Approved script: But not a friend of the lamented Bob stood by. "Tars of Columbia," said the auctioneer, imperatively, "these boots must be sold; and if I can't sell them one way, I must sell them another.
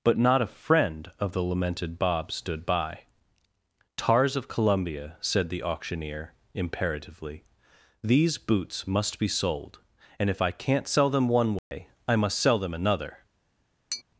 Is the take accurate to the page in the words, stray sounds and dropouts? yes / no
no